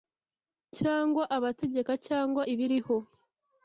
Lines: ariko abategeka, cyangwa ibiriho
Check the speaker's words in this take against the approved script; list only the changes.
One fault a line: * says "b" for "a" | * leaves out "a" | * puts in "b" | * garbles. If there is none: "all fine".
* says "cyangwa" for "ariko"